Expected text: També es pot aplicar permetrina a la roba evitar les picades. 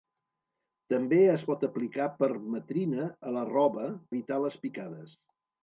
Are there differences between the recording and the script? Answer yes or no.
no